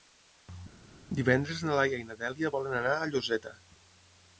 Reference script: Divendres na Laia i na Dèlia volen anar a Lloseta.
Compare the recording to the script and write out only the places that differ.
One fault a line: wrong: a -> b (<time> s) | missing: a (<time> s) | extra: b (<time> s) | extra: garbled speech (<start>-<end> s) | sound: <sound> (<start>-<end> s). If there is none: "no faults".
no faults